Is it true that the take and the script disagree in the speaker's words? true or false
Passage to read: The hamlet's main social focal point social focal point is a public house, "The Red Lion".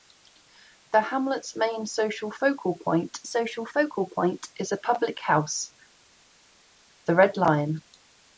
false